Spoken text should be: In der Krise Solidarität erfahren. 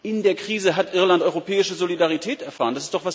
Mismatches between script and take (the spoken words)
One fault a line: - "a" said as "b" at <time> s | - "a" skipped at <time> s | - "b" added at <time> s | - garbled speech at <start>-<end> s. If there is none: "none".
- "hat Irland europäische" added at 0.8 s